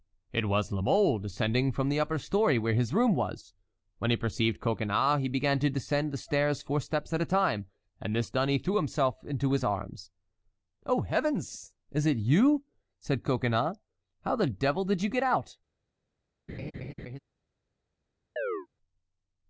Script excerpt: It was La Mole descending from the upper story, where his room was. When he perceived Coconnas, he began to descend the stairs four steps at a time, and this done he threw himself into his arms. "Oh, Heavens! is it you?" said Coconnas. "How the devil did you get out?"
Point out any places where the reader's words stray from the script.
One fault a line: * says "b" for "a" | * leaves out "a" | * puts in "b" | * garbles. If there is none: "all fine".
all fine